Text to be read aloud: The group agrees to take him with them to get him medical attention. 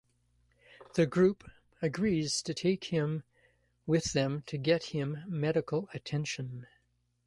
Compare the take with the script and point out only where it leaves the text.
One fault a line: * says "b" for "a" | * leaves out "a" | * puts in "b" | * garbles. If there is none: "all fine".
all fine